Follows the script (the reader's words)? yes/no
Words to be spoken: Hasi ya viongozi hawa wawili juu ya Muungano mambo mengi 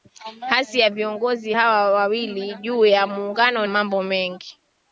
yes